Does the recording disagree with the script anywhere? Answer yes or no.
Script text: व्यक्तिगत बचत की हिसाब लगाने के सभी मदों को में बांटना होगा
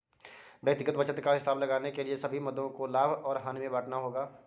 yes